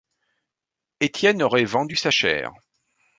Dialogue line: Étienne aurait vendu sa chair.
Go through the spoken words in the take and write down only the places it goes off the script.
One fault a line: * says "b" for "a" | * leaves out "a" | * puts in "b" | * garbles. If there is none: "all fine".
all fine